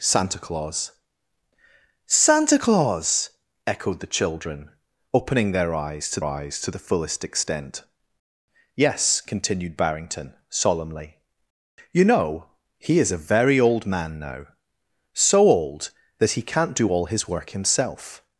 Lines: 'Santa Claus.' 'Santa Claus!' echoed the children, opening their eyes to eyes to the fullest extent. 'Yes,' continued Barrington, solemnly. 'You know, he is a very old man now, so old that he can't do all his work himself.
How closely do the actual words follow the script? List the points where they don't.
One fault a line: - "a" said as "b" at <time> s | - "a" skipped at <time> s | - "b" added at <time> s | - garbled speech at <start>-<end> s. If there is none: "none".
none